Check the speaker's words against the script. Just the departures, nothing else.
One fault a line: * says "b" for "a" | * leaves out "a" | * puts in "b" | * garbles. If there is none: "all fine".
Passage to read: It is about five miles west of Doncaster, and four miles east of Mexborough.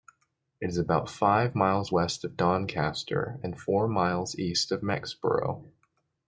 all fine